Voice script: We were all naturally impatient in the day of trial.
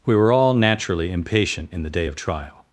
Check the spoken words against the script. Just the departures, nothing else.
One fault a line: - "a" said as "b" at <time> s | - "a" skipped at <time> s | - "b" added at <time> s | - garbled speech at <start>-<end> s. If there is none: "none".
none